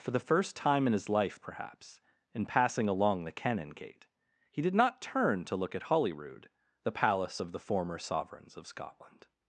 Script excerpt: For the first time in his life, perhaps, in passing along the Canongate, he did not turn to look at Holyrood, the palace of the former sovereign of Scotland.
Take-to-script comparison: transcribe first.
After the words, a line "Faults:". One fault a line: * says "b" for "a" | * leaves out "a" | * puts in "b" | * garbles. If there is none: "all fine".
For the first time in his life, perhaps, in passing along the Canongate, he did not turn to look at Holyrood, the palace of the former sovereigns of Scotland.
Faults:
* says "sovereigns" for "sovereign"